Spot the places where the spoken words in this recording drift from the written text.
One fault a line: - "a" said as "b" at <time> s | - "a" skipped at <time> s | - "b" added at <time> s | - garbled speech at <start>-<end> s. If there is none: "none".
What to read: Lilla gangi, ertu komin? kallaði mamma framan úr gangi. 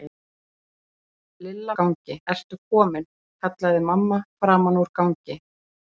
none